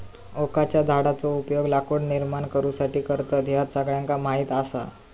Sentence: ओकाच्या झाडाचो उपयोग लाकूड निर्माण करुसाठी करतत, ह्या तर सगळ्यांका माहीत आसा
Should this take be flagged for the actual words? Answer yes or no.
yes